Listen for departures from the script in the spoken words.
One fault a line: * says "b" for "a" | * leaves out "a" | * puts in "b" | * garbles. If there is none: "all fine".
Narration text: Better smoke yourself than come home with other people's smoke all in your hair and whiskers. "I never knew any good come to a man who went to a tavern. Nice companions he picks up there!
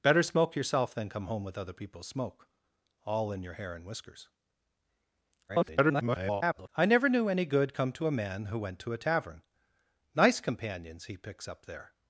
* garbles